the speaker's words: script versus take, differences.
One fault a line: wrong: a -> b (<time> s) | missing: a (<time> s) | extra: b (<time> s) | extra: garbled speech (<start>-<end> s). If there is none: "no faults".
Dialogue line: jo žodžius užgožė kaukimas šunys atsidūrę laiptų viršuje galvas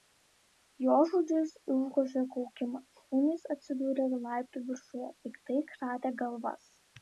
extra: piktai kratė (5.3 s)